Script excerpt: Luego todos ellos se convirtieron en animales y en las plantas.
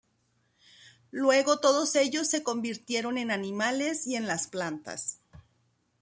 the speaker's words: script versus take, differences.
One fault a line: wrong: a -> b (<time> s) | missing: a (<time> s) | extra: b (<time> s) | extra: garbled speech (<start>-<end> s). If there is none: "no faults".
no faults